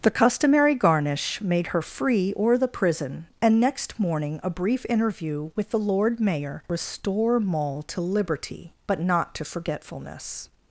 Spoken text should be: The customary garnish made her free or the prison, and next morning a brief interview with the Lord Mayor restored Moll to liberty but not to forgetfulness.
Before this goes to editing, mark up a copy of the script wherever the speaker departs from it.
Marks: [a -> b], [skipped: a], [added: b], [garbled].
The customary garnish made her free or the prison, and next morning a brief interview with the Lord Mayor [restored -> restore] Moll to liberty but not to forgetfulness.